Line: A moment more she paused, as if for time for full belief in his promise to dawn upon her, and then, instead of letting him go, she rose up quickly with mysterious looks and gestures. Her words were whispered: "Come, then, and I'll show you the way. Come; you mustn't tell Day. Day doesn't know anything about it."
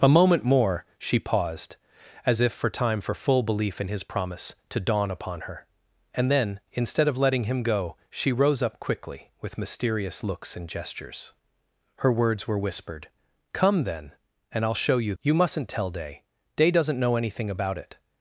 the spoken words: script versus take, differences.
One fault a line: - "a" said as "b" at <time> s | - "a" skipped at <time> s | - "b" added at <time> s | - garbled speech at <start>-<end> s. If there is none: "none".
- "the way Come" skipped at 15.1 s